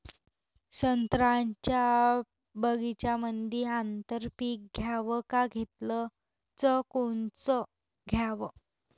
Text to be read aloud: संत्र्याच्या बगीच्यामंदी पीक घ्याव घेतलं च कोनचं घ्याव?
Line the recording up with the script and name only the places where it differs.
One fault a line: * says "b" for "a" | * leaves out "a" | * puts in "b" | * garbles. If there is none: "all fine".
* puts in "आंतर"
* puts in "का"